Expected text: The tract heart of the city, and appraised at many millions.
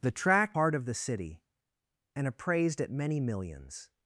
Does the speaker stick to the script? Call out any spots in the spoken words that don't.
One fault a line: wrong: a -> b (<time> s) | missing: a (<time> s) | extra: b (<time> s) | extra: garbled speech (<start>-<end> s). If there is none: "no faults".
no faults